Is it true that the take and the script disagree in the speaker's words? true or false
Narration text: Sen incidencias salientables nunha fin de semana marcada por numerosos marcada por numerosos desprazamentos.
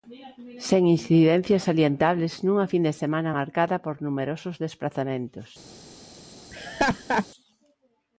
true